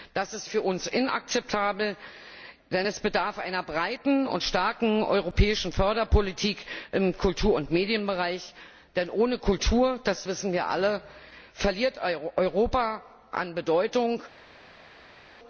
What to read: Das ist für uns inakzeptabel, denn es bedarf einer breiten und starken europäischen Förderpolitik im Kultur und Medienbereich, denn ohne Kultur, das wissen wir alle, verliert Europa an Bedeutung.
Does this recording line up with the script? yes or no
yes